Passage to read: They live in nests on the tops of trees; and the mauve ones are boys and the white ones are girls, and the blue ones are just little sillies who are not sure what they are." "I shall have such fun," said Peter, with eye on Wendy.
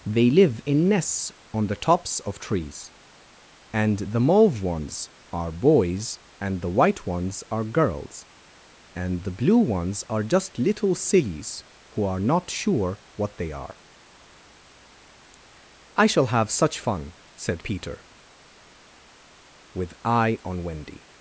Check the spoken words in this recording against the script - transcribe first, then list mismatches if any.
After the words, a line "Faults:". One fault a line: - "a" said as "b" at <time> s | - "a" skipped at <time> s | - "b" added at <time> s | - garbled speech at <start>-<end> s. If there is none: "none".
They live in nests on the tops of trees; and the mauve ones are boys and the white ones are girls, and the blue ones are just little sillies who are not sure what they are." "I shall have such fun," said Peter, with eye on Wendy.
Faults:
none